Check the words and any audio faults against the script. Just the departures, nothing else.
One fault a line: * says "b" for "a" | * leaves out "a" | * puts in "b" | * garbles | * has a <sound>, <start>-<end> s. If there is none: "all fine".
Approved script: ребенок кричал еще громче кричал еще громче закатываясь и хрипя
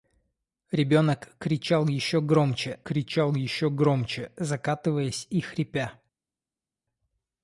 all fine